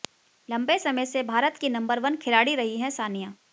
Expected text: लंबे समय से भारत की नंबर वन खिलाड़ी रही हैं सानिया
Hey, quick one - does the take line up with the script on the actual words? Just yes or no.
yes